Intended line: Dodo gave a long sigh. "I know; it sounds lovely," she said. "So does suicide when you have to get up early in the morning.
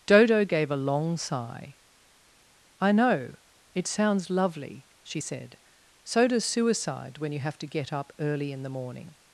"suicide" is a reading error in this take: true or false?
false